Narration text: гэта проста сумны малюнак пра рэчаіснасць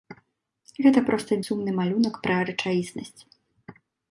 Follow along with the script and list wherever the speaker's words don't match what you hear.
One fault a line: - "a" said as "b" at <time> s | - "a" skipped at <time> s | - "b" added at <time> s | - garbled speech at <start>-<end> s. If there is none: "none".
none